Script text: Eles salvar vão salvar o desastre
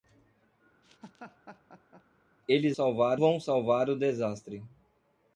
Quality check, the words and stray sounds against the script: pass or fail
fail